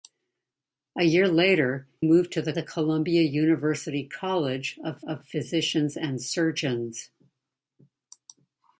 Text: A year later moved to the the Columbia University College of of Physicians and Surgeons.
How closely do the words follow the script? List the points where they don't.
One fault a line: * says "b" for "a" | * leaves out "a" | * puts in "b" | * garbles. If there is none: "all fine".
all fine